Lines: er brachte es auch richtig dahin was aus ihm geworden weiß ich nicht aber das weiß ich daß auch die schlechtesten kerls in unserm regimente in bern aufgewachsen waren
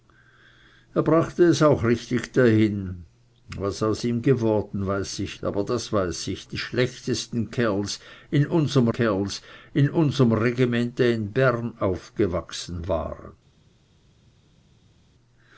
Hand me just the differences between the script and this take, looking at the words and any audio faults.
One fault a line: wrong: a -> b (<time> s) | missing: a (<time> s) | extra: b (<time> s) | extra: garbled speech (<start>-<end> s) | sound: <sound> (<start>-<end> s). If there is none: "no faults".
missing: nicht (5.4 s)
wrong: daß auch die schlechtesten -> die schlechtesten kerls in unserm (6.4 s)